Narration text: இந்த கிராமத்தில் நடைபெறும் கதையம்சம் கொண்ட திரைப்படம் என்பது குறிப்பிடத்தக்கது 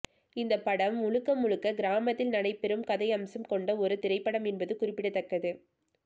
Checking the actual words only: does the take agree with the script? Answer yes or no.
no